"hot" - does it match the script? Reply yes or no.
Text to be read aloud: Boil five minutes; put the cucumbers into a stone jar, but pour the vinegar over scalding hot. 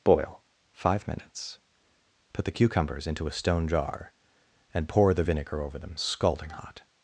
yes